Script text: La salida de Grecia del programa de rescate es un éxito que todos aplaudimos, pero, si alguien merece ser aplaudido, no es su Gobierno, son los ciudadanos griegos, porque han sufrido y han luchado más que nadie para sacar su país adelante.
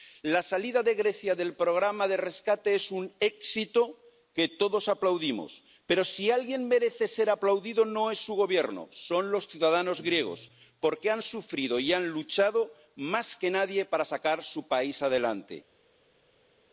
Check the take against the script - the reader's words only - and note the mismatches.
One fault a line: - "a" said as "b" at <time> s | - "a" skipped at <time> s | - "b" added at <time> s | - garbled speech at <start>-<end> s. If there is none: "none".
none